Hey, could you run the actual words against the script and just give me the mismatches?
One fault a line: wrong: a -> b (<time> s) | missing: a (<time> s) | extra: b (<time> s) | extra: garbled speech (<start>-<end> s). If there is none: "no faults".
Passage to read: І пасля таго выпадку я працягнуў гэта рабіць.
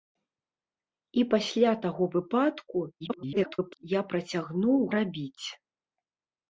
extra: garbled speech (3.0-3.8 s)
missing: гэта (4.8 s)